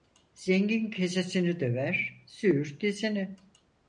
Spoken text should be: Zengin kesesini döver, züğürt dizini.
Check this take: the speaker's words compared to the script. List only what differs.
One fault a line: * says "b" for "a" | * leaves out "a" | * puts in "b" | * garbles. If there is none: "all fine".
all fine